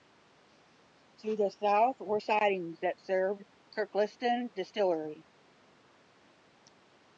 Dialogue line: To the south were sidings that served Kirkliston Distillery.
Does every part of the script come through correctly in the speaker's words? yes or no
yes